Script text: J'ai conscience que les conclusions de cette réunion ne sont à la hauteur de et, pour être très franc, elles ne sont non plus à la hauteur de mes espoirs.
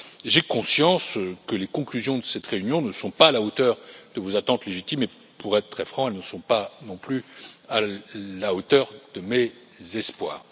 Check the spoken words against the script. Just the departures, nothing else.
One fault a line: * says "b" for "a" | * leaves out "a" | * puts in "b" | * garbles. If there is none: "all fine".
* puts in "pas"
* puts in "vos attentes légitimes"
* puts in "pas"